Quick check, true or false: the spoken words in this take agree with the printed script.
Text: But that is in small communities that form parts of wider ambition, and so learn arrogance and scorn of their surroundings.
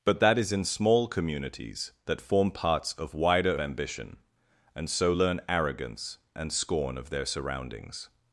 true